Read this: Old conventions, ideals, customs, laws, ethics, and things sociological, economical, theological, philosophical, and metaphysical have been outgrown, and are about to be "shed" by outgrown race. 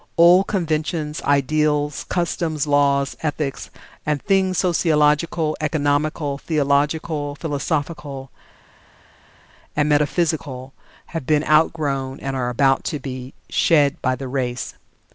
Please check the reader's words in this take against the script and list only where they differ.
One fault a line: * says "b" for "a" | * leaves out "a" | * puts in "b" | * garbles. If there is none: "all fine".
* says "the" for "outgrown"